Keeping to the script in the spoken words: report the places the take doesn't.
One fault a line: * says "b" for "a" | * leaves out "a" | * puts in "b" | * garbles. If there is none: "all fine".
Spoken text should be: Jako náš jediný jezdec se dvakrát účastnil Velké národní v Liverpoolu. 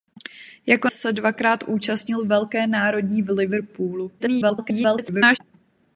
* leaves out "náš jediný jezdec"
* garbles